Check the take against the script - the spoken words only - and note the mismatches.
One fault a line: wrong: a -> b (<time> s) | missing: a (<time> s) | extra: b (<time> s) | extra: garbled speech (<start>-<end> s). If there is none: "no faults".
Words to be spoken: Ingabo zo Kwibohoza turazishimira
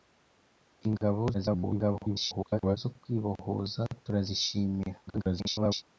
extra: garbled speech (1.3-2.8 s)
extra: garbled speech (5.1-5.8 s)